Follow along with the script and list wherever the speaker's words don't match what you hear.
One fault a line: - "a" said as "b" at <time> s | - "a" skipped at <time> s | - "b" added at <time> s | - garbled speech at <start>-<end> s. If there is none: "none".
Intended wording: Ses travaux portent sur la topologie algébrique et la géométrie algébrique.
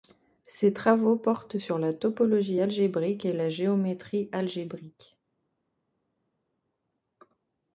none